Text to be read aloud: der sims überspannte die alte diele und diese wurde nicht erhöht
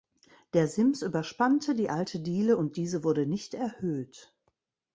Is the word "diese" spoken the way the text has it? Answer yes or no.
yes